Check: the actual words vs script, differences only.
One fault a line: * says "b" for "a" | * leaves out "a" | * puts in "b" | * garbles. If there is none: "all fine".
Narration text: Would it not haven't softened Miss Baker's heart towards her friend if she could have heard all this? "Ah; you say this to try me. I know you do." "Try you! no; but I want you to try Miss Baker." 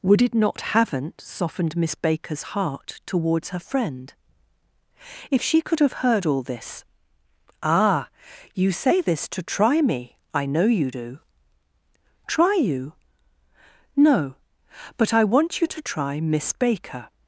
all fine